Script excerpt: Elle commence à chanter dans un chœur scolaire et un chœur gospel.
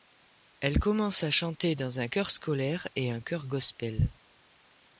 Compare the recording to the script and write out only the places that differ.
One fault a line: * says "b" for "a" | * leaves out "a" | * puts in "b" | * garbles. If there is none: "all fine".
all fine